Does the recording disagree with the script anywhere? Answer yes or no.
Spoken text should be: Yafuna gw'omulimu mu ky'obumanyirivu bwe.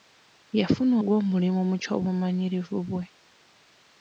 no